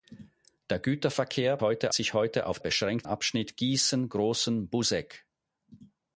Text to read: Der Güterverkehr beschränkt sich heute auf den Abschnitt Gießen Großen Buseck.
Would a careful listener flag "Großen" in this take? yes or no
no